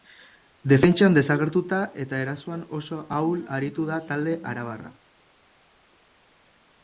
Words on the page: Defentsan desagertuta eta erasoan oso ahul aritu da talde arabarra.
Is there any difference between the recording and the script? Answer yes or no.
no